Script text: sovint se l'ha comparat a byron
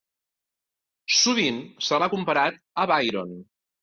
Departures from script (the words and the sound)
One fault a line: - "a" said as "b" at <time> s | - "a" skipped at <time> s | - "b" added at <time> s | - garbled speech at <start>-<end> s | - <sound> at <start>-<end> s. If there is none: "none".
none